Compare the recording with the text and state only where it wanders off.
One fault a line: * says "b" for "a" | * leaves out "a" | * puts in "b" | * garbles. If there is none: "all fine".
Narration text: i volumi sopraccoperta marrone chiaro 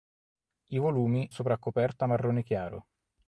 all fine